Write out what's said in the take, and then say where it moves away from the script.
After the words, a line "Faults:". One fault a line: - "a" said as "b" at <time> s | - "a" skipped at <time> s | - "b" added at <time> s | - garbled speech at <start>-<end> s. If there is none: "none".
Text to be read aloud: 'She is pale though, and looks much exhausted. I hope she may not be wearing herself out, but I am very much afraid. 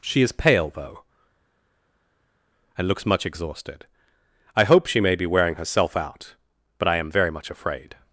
'She is pale though, and looks much exhausted. I hope she may be wearing herself out, but I am very much afraid.
Faults:
- "not" skipped at 5.2 s